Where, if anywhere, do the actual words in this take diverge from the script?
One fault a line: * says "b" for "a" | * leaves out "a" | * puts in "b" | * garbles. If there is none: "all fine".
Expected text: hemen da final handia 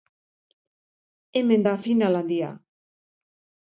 all fine